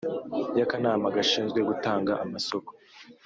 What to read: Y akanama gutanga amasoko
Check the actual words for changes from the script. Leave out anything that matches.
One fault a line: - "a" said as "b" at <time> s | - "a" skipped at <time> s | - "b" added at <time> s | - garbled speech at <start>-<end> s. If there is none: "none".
- "gashinzwe" added at 1.2 s